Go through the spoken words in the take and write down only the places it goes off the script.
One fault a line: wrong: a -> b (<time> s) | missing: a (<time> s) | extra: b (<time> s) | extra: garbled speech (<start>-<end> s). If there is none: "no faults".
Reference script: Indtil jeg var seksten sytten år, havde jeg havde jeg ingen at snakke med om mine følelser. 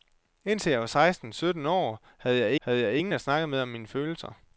no faults